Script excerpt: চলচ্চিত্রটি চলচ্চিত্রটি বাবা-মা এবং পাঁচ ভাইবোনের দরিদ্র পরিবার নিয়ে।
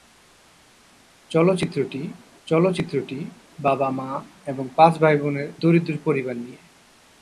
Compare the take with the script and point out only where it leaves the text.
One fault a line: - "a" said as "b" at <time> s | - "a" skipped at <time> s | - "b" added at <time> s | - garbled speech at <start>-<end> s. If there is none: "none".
none